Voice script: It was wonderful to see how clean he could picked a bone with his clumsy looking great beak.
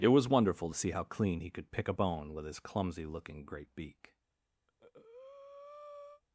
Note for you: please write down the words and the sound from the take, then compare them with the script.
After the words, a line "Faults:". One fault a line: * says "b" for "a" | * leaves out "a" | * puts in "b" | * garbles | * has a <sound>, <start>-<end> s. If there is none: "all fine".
It was wonderful to see how clean he could pick a bone with his clumsy looking great beak.
Faults:
* says "pick" for "picked"
* has a breath, 4.7-6.2 s